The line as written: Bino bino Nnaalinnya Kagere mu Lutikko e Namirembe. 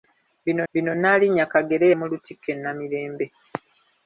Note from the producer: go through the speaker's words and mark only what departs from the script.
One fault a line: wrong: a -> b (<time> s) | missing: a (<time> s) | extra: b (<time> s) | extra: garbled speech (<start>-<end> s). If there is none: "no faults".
no faults